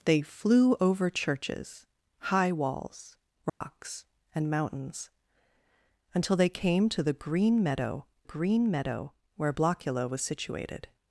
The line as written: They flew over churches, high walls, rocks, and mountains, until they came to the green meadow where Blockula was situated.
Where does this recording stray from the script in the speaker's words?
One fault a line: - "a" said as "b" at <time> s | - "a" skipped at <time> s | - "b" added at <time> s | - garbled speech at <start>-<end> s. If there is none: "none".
- "green meadow" added at 8.2 s